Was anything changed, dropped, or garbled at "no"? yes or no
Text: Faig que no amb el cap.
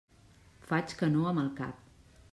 no